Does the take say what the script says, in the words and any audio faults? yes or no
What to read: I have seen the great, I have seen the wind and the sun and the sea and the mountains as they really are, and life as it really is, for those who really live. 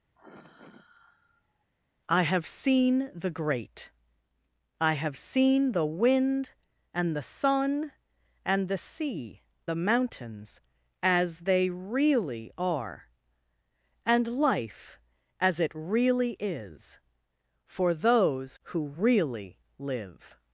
no